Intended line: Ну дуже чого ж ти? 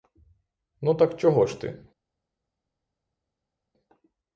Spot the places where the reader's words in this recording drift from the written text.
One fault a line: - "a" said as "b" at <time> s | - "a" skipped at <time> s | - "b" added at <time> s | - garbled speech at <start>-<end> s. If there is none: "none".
- "дуже" said as "так" at 0.9 s